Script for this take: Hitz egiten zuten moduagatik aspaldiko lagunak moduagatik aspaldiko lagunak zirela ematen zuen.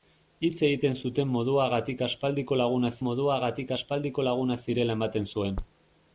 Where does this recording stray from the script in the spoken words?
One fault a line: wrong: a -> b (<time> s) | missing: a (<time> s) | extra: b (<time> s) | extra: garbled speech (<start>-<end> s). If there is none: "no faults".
no faults